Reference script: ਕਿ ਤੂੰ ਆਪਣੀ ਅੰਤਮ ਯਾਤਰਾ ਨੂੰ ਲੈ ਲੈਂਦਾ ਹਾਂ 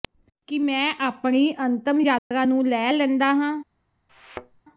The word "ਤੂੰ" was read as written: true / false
false